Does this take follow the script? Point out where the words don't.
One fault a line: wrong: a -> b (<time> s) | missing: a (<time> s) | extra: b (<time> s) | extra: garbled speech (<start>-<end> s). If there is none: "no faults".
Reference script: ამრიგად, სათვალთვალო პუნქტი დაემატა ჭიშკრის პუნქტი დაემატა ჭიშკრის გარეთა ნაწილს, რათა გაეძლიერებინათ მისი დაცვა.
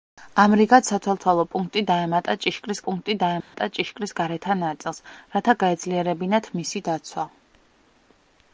no faults